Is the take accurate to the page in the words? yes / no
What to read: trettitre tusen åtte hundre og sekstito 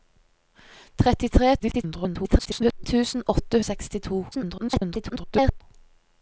no